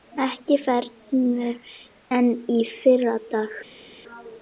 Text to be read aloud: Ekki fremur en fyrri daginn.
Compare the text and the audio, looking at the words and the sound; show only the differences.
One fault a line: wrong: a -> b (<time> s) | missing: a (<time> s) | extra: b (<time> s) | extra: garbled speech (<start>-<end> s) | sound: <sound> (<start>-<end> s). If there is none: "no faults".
no faults